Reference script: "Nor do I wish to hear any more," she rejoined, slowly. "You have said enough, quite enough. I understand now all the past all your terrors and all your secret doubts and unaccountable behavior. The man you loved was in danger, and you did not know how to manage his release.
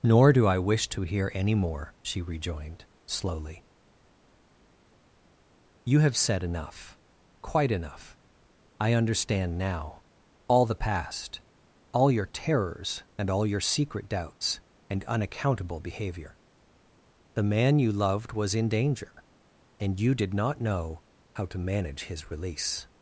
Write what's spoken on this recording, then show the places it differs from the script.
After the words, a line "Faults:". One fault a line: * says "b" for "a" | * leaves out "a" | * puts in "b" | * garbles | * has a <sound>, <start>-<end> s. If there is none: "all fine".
"Nor do I wish to hear any more," she rejoined, slowly. "You have said enough, quite enough. I understand now all the past all your terrors and all your secret doubts and unaccountable behavior. The man you loved was in danger, and you did not know how to manage his release.
Faults:
all fine